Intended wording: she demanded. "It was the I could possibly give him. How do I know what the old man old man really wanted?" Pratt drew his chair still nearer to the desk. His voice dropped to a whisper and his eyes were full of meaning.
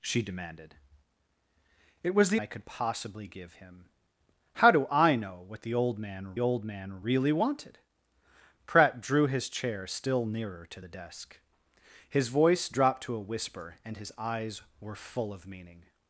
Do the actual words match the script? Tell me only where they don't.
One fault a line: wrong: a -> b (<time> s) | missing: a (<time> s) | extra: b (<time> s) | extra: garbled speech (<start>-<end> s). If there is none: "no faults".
no faults